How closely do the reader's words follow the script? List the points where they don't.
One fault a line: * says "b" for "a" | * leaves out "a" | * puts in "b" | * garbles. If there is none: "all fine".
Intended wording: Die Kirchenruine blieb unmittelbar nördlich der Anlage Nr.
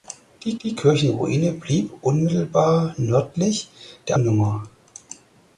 * puts in "die"
* leaves out "Anlage"